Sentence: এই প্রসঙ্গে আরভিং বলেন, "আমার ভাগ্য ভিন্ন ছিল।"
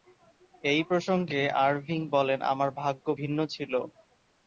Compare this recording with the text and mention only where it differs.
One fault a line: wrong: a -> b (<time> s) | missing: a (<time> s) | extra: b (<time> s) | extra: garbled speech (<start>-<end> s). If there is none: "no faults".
no faults